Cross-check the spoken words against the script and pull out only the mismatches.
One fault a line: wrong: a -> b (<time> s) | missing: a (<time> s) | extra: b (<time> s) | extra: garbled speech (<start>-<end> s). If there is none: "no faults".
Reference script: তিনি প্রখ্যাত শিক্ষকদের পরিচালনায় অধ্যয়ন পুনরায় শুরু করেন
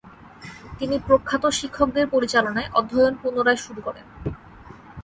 no faults